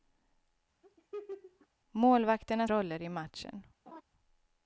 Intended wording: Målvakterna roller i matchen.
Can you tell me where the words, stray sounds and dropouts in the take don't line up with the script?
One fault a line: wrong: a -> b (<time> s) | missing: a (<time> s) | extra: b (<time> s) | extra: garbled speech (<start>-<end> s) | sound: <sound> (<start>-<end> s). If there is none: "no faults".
sound: laugh (0.8-1.7 s)
sound: laugh (3.9-4.0 s)